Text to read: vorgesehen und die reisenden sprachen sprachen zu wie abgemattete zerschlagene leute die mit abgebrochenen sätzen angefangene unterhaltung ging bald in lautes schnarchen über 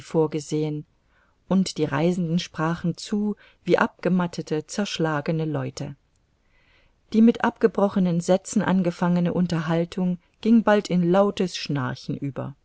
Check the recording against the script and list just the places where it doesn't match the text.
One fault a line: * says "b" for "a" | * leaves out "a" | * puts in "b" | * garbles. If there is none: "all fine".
* leaves out "sprachen"